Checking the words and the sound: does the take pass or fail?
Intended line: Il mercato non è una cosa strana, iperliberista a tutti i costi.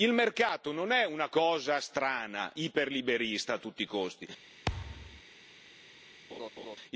fail